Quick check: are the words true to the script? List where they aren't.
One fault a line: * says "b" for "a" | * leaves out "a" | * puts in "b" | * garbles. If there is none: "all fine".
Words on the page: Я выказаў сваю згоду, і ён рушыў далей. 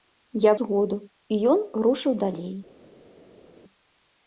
* leaves out "выказаў сваю"